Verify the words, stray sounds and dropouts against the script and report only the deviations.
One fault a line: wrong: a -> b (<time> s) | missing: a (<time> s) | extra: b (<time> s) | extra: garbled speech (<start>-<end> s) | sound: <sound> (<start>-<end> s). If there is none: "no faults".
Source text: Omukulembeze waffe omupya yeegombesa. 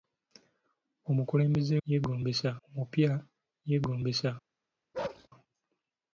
wrong: waffe -> yeegombesa (1.9 s)
sound: bark (4.9-5.3 s)